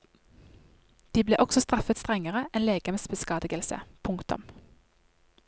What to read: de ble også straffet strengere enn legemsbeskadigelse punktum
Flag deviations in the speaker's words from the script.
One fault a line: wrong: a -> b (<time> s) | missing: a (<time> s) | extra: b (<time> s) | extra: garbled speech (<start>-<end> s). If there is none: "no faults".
no faults